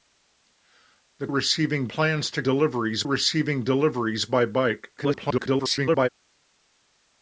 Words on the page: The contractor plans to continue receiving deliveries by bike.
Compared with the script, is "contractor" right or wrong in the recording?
wrong